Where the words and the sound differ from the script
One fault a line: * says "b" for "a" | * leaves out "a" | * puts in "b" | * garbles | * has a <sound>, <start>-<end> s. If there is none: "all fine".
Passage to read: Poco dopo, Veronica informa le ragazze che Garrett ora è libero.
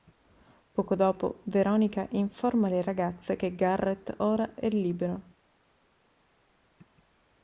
all fine